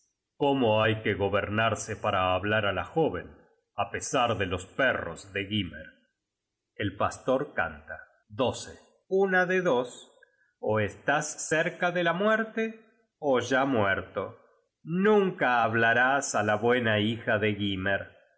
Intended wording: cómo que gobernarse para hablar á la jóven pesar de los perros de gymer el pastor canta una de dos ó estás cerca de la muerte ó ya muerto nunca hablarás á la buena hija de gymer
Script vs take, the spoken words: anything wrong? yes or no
yes